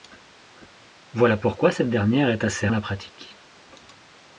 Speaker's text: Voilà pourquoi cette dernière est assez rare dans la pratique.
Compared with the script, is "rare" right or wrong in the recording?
wrong